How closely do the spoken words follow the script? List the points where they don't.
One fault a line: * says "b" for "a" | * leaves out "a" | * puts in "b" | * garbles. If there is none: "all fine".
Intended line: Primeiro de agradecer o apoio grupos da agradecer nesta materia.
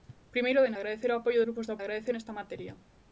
all fine